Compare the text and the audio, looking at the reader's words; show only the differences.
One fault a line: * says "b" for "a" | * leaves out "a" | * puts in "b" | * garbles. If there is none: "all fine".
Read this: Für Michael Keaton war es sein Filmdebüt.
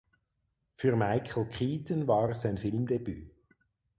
all fine